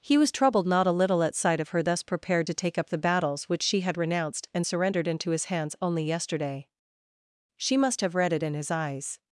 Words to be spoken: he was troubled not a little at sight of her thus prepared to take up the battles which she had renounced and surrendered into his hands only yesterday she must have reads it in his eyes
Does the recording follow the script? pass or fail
fail